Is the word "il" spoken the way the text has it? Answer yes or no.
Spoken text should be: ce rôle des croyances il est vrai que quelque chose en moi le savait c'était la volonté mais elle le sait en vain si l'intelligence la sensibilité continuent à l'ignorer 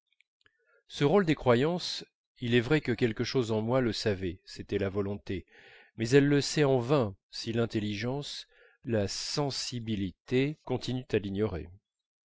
yes